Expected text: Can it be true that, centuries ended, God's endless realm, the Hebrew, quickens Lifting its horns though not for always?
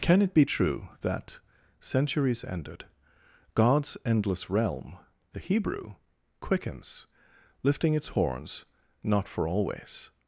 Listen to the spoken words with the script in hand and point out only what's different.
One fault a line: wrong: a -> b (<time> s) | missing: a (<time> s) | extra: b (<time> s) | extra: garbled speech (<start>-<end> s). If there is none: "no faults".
missing: though (8.6 s)